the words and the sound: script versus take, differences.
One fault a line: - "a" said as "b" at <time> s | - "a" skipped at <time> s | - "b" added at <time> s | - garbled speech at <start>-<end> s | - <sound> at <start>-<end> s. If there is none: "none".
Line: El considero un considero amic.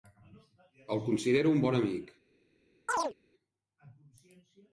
- "considero" said as "bon" at 1.7 s
- chirp at 2.9-3.1 s